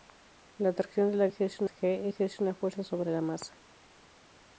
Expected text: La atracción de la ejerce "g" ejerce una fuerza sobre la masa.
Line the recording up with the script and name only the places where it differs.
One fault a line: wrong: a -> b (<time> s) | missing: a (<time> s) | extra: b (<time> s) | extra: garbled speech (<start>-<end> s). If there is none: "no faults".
no faults